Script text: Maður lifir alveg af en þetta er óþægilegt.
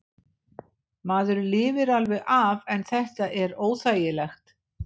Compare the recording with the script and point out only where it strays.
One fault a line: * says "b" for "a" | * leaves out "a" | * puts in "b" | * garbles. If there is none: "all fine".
all fine